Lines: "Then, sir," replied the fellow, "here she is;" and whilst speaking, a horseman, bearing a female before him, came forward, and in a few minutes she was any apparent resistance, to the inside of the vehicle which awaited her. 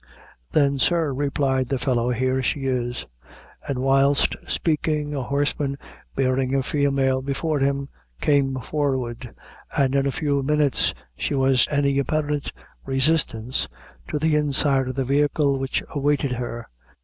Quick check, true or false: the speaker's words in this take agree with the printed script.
true